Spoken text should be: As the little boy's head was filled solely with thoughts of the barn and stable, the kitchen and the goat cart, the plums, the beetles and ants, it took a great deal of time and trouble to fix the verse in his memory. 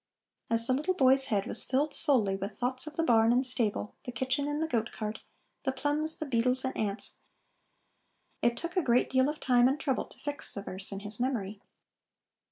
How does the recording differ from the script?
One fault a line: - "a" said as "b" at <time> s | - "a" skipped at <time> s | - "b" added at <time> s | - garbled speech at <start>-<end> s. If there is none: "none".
none